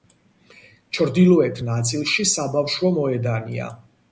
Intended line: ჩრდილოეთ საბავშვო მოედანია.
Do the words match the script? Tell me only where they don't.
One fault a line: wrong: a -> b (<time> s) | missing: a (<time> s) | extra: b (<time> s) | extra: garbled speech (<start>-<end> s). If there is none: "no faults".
extra: ნაწილში (1.7 s)